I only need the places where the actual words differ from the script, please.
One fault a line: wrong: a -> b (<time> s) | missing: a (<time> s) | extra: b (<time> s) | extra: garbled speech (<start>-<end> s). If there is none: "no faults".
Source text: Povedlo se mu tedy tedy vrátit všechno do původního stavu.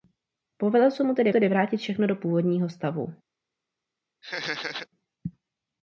no faults